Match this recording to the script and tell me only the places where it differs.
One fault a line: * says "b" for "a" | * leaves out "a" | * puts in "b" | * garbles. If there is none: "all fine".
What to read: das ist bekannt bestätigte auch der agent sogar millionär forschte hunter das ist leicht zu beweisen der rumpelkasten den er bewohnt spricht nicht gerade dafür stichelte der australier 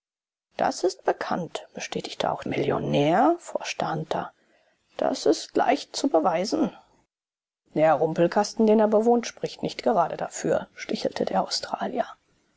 * leaves out "der agent sogar"